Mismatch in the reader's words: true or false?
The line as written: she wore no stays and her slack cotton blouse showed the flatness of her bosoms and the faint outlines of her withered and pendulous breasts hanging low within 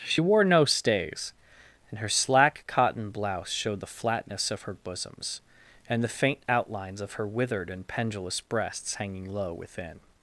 false